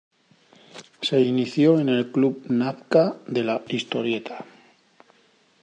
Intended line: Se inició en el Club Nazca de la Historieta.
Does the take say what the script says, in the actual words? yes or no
yes